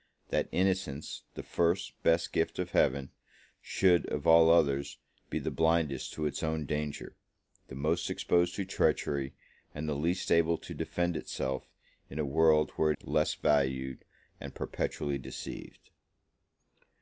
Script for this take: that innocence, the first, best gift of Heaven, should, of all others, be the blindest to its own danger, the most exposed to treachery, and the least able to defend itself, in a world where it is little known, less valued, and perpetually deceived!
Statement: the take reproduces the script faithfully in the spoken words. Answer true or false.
false